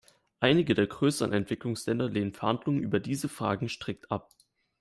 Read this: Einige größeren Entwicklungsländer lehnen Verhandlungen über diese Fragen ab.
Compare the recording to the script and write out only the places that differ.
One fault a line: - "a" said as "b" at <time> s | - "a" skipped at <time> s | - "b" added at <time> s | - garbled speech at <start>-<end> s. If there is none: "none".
- "der" added at 0.7 s
- "strikt" added at 3.7 s